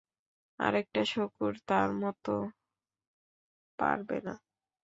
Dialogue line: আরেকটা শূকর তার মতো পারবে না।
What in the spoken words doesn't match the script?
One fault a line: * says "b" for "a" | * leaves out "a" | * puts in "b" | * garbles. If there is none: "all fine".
all fine